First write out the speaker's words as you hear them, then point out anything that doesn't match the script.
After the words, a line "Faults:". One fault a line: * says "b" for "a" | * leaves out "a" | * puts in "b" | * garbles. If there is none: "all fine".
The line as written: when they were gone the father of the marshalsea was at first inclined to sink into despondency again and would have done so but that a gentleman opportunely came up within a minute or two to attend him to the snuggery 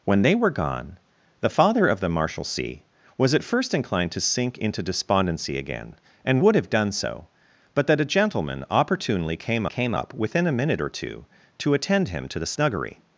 when they were gone the father of the marshalsea was at first inclined to sink into despondency again and would have done so but that a gentleman opportunely came came up within a minute or two to attend him to the snuggery
Faults:
* puts in "came"